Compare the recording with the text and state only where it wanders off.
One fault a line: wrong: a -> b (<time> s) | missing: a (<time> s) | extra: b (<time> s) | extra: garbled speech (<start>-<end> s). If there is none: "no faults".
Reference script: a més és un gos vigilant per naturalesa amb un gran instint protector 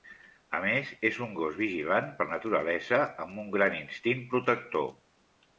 no faults